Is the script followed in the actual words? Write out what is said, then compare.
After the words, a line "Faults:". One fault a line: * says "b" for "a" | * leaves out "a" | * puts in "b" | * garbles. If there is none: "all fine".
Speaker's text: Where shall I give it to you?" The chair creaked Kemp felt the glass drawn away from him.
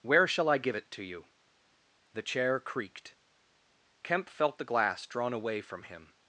Where shall I give it to you?" The chair creaked Kemp felt the glass drawn away from him.
Faults:
all fine